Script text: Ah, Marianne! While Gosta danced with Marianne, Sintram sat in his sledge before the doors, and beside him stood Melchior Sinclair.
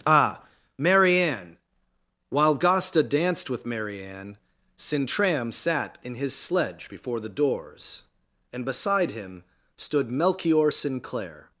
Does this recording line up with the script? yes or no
yes